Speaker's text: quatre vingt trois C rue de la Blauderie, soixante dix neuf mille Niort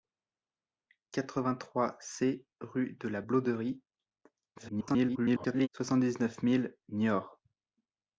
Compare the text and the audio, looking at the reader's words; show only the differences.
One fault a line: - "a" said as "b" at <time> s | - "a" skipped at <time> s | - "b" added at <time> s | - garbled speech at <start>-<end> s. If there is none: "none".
- garbled speech at 4.6-5.7 s